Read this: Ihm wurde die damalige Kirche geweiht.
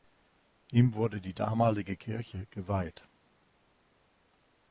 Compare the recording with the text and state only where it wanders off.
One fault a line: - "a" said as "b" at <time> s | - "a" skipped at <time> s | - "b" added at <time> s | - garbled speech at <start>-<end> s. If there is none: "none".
none